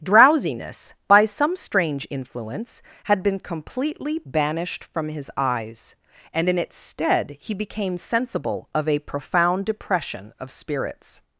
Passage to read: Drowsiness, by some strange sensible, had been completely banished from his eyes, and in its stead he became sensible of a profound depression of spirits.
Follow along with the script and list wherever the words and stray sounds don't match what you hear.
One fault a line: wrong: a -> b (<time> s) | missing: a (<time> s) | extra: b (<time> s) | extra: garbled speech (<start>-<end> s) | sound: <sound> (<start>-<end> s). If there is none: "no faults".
wrong: sensible -> influence (2.1 s)